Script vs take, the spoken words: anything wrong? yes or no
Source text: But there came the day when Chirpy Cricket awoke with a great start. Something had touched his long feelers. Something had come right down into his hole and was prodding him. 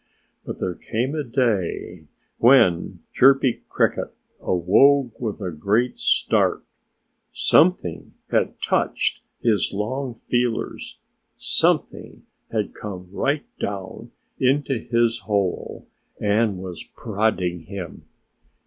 yes